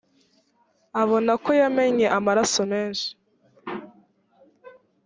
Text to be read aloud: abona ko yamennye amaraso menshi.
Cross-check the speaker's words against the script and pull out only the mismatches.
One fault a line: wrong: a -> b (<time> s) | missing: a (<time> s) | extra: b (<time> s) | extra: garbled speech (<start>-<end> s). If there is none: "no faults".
no faults